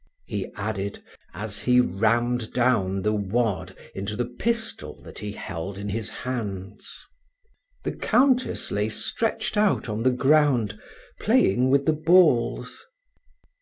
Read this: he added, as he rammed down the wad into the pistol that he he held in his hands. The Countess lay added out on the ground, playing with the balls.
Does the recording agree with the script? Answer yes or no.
no